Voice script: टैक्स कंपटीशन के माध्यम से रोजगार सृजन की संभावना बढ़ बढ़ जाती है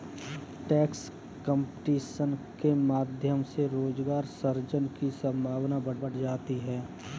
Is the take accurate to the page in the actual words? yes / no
yes